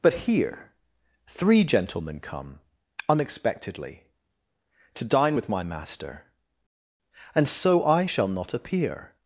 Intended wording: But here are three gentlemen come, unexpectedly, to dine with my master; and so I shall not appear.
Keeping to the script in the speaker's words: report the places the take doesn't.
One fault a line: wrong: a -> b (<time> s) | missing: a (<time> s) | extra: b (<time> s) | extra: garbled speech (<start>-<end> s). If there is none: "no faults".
missing: are (0.7 s)